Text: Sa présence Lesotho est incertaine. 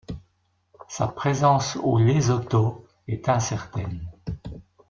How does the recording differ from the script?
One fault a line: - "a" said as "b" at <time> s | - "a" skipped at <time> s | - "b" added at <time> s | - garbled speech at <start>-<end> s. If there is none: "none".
- "au" added at 1.8 s